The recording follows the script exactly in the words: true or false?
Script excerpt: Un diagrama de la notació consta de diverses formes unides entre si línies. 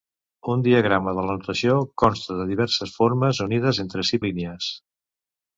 true